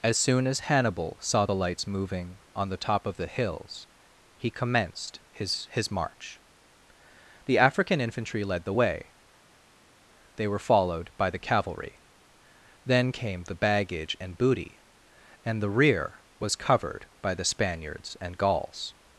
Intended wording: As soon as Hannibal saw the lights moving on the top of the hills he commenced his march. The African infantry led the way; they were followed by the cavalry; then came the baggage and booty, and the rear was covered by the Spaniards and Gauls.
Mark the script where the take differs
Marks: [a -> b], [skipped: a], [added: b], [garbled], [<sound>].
As soon as Hannibal saw the lights moving on the top of the hills he commenced his [added: his] march. The African infantry led the way; they were followed by the cavalry; then came the baggage and booty, and the rear was covered by the Spaniards and Gauls.